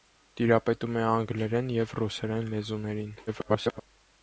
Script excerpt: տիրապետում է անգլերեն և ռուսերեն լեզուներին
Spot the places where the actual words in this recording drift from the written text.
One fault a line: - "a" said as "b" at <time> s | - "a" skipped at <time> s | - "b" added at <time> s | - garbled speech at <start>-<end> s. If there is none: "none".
- garbled speech at 3.3-3.8 s